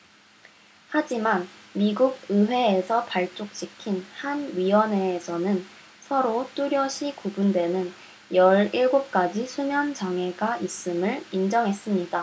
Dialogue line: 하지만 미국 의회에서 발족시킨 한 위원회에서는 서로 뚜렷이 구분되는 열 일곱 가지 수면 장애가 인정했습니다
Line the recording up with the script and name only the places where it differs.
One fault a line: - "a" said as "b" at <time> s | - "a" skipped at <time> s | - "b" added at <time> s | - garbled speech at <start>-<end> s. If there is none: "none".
- "있음을" added at 10.6 s